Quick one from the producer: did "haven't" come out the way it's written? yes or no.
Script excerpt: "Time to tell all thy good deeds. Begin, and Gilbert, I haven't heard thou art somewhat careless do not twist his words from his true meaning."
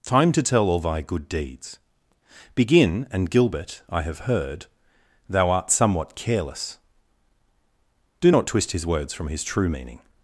no